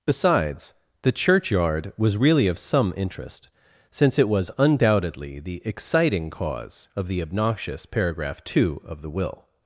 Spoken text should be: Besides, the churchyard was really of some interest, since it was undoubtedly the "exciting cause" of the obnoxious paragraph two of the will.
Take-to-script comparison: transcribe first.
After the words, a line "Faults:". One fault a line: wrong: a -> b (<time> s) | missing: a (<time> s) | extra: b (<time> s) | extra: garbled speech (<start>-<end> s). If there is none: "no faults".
Besides, the churchyard was really of some interest, since it was undoubtedly the "exciting cause" of the obnoxious paragraph two of the will.
Faults:
no faults